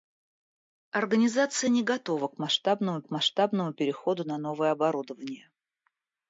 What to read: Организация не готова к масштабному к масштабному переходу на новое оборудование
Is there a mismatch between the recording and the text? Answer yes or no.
no